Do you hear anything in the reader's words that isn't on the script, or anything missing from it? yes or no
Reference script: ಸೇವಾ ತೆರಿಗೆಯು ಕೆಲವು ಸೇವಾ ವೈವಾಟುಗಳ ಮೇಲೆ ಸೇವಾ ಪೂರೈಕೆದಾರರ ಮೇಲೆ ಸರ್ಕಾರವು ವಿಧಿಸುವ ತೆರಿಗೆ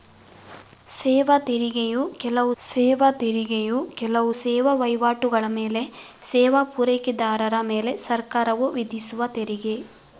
yes